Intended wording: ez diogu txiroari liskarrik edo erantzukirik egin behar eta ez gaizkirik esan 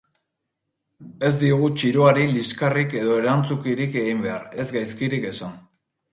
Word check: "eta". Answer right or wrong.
wrong